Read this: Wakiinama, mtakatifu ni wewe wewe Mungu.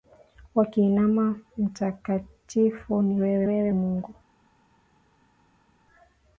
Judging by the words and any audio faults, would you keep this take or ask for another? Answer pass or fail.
pass